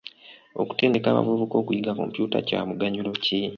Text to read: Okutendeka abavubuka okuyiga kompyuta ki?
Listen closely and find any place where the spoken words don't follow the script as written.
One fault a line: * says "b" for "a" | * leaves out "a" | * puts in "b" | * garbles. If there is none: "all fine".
* puts in "kya muganyulo"